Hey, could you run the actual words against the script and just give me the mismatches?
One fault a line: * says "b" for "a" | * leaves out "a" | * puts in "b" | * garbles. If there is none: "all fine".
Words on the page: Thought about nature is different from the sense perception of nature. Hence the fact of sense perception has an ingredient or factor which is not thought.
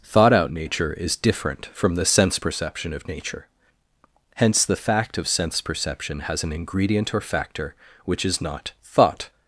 * says "out" for "about"